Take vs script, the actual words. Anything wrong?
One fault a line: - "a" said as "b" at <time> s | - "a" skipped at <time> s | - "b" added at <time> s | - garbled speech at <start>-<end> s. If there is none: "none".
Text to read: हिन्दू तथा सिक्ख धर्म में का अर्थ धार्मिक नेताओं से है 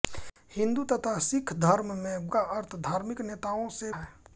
none